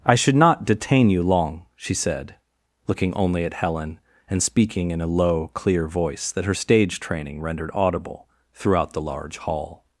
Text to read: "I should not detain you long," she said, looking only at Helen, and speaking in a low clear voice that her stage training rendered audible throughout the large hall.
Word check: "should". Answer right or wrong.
right